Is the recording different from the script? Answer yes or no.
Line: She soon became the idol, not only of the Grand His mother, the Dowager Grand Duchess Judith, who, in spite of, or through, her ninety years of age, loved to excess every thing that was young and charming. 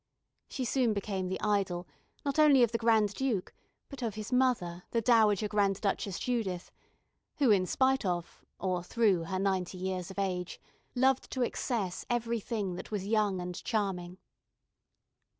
yes